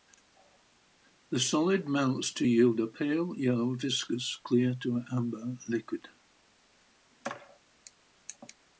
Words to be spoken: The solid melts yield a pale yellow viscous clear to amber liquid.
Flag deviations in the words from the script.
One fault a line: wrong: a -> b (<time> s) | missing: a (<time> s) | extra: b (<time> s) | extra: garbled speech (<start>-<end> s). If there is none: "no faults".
extra: to (2.3 s)